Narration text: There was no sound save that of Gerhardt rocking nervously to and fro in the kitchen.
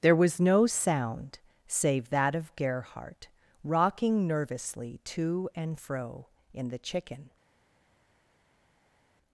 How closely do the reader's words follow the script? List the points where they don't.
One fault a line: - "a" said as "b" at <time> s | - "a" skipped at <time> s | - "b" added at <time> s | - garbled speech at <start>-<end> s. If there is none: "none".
- "kitchen" said as "chicken" at 6.8 s